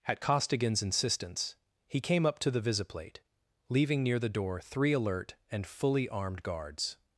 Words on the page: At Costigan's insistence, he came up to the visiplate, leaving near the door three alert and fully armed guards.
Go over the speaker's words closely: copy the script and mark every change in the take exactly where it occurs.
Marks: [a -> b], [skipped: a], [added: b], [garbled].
At Costigan's insistence, he came up to the visiplate, leaving near the door three alert and fully armed guards.